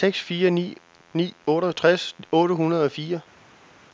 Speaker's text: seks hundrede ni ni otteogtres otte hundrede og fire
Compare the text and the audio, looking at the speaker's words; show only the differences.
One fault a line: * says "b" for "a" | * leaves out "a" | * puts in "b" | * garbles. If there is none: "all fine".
* says "fire" for "hundrede"